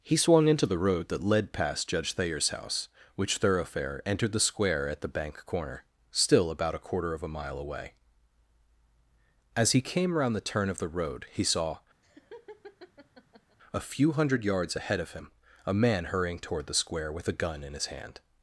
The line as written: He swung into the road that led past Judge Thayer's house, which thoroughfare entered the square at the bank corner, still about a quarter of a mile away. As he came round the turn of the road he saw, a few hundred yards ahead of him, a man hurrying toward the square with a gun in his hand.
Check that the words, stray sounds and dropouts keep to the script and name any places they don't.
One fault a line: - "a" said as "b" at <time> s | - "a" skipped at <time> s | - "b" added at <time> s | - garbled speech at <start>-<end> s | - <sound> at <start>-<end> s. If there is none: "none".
- laugh at 12.0-13.6 s